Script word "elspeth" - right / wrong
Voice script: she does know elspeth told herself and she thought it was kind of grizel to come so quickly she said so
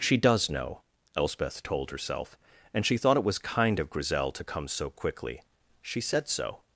right